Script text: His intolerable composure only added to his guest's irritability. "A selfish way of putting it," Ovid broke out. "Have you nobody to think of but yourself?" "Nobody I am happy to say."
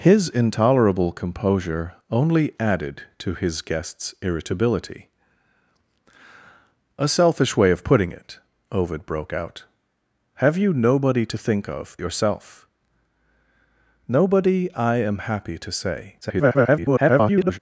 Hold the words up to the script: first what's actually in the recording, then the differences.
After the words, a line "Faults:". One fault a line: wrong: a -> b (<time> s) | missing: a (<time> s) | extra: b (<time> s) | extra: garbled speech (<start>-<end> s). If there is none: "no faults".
His intolerable composure only added to his guest's irritability. "A selfish way of putting it," Ovid broke out. "Have you nobody to think of yourself?" "Nobody I am happy to say." [garbled]
Faults:
missing: but (12.0 s)
extra: garbled speech (16.2-17.6 s)